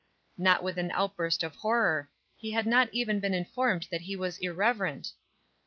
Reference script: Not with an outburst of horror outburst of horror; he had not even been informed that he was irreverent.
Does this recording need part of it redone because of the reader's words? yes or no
yes